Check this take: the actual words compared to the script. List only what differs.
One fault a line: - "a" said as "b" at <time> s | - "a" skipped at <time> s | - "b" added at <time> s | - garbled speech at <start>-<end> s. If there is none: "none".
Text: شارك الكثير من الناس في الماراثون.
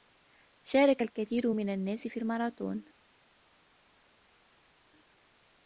none